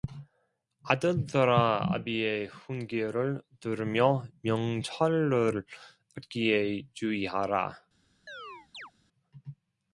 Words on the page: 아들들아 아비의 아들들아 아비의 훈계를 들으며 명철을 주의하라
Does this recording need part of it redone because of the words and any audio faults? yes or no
yes